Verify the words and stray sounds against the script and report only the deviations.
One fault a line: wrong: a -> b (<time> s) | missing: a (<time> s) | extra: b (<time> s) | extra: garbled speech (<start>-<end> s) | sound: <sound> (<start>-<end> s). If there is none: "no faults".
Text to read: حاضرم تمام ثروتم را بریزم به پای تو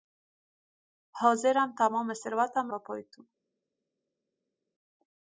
missing: را بریزم (2.7 s)